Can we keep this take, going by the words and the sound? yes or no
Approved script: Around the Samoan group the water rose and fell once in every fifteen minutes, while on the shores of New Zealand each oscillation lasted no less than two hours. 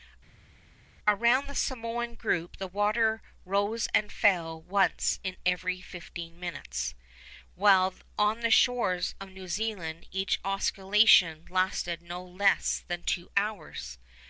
yes